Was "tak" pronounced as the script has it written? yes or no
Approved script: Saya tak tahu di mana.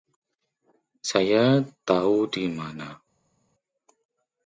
no